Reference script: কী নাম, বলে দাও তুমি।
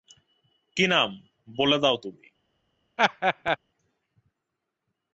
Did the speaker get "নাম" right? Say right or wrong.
right